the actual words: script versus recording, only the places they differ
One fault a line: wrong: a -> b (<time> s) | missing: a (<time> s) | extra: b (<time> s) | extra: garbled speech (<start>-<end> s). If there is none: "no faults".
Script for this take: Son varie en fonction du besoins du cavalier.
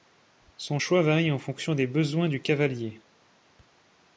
extra: choix (0.8 s)
wrong: du -> des (1.7 s)